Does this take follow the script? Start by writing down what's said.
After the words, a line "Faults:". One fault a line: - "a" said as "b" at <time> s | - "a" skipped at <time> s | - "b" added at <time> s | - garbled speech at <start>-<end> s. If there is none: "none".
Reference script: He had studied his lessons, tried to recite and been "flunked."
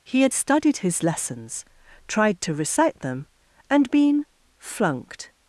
He had studied his lessons, tried to recite them, and been "flunked."
Faults:
- "them" added at 3.0 s